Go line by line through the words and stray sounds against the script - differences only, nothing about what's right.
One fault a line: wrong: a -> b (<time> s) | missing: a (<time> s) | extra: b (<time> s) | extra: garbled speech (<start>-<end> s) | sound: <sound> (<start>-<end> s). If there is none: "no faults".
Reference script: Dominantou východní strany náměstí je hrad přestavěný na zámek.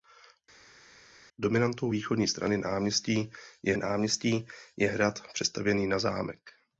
extra: náměstí je (3.8 s)